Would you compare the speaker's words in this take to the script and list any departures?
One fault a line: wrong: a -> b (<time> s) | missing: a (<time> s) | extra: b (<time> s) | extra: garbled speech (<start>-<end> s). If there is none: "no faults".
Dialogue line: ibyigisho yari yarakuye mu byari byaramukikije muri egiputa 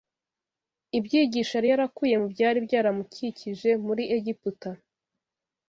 no faults